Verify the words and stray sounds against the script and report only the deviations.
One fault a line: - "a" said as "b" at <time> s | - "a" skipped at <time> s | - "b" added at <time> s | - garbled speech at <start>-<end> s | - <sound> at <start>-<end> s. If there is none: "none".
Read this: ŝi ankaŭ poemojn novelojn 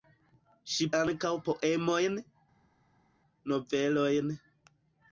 none